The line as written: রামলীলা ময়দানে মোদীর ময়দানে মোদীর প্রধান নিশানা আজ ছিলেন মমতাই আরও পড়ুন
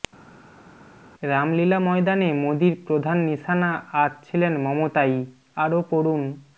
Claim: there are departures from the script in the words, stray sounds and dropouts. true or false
true